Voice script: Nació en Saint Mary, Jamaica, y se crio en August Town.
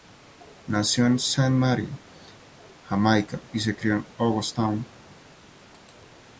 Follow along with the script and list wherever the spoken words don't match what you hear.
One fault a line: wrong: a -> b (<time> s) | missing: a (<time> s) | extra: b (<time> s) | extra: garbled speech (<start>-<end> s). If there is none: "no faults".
no faults